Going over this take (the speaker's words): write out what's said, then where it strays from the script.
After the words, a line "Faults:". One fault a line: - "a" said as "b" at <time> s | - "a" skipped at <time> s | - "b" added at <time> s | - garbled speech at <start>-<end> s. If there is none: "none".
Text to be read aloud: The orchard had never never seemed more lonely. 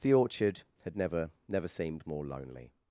The orchard had never never seemed more lonely.
Faults:
none